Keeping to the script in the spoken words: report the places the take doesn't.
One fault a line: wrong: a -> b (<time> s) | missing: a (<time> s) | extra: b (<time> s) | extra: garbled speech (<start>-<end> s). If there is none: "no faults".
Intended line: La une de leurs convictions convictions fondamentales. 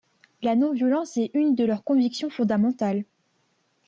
extra: non violence est (0.6 s)
missing: convictions (2.3 s)